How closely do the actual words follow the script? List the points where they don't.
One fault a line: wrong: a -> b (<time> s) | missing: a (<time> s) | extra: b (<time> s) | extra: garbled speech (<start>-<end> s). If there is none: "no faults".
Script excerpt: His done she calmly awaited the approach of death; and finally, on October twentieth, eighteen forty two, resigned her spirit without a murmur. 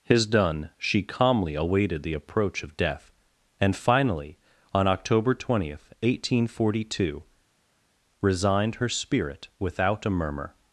no faults